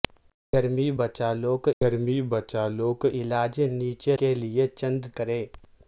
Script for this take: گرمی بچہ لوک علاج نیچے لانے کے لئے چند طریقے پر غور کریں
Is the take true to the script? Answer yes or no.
no